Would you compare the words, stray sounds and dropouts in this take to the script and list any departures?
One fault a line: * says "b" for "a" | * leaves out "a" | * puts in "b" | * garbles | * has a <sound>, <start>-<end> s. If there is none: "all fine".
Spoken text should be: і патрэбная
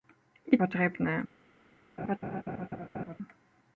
* has a laugh, 2.0-3.2 s